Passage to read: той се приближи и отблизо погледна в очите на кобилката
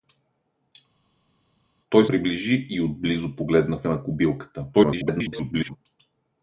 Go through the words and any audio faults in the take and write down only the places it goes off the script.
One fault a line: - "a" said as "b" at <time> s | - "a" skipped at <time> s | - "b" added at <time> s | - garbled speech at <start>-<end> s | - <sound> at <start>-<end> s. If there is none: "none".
- "се" skipped at 2.1 s
- "очите" skipped at 3.9 s
- garbled speech at 4.7-5.8 s